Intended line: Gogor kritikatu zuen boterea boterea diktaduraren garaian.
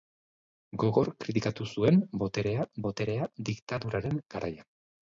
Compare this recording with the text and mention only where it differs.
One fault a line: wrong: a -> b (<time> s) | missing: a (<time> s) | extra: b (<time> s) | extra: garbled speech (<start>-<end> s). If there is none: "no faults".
no faults